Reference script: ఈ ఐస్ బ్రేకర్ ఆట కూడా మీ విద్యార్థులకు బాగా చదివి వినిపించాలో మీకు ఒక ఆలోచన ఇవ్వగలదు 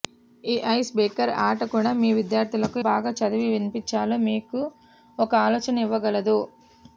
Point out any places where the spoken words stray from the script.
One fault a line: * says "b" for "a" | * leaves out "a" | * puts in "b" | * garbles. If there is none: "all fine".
all fine